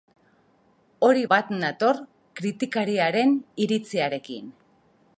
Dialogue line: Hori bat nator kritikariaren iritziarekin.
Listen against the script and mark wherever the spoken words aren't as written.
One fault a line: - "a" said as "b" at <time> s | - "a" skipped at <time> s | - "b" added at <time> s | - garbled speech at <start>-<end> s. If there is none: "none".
none